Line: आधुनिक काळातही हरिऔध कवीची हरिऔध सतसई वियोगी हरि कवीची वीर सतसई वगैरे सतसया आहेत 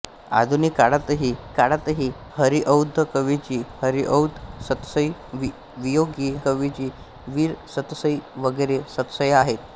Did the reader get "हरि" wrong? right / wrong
wrong